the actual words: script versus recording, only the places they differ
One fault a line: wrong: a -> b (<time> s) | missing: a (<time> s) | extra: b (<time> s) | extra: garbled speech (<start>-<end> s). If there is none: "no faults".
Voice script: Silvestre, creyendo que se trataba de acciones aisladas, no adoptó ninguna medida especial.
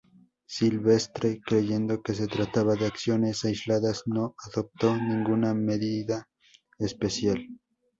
no faults